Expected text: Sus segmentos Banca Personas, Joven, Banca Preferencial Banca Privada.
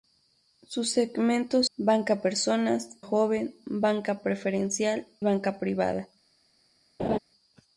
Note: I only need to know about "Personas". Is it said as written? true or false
true